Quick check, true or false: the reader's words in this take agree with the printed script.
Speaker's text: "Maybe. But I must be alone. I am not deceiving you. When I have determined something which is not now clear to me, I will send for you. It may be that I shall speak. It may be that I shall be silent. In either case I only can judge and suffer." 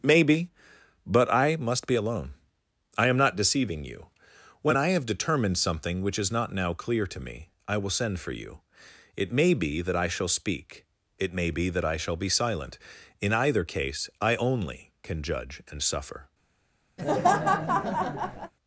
true